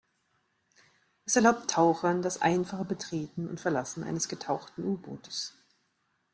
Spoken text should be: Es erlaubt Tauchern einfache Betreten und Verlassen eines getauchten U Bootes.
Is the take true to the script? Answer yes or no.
no